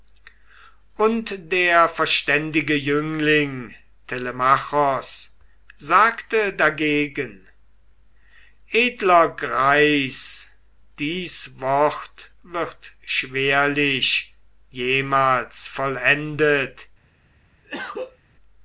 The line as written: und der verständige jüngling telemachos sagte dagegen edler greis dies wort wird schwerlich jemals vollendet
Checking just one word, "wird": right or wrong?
right